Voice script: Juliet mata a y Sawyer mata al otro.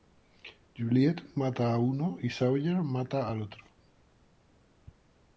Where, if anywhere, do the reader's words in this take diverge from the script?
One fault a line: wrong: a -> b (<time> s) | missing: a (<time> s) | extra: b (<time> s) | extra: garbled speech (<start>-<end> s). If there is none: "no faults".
extra: uno (1.8 s)